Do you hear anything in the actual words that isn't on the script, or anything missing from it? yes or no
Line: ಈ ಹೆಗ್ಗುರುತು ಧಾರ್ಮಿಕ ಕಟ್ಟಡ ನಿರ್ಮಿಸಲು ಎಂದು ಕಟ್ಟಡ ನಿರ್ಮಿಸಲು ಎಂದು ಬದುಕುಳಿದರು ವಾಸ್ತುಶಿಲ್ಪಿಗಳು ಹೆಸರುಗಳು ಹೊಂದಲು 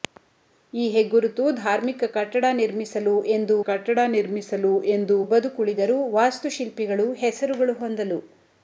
no